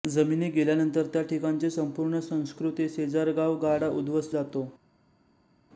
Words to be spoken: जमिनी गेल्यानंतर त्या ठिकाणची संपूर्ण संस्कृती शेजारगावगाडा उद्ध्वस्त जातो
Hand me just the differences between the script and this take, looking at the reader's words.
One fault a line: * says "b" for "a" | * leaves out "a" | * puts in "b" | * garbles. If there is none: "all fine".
all fine